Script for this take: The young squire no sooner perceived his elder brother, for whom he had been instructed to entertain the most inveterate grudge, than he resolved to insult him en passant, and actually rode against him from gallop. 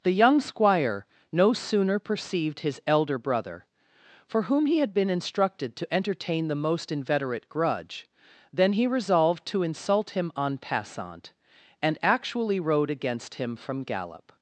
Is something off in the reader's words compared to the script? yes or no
no